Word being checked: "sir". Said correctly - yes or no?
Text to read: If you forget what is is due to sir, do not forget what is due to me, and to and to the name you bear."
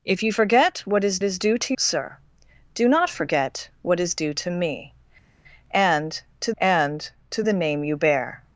yes